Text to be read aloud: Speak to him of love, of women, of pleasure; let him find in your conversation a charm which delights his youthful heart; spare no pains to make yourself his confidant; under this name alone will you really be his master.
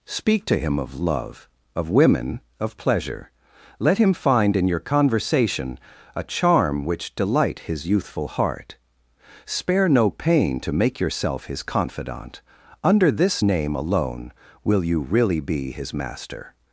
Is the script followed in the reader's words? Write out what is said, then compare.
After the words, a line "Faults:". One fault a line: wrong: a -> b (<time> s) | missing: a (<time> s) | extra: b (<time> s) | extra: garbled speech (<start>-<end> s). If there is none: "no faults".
Speak to him of love, of women, of pleasure; let him find in your conversation a charm which delight his youthful heart; spare no pain to make yourself his confidant; under this name alone will you really be his master.
Faults:
wrong: delights -> delight (7.2 s)
wrong: pains -> pain (10.1 s)